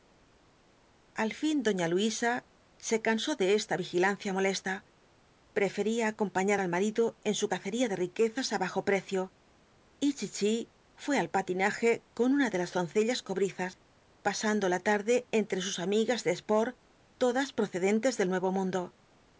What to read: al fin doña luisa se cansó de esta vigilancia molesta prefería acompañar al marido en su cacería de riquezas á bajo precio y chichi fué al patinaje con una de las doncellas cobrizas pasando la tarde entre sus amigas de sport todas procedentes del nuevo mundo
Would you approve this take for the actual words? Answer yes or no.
yes